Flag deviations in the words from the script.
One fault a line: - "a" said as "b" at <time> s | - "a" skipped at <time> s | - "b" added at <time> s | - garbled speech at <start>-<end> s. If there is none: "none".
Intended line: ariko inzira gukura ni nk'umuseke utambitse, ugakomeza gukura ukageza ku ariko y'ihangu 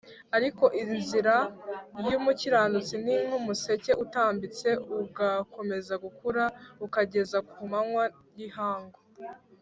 - "gukura" said as "y'umukiranutsi" at 2.1 s
- "ariko" said as "manywa" at 7.7 s